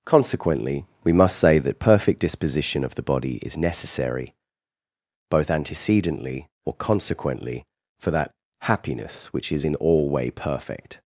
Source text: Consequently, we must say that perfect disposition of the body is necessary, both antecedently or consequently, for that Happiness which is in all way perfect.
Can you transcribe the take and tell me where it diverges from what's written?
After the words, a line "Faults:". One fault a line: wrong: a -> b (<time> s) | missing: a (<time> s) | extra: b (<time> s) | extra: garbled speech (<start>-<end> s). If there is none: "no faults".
Consequently, we must say that perfect disposition of the body is necessary, both antecedently or consequently, for that Happiness which is in all way perfect.
Faults:
no faults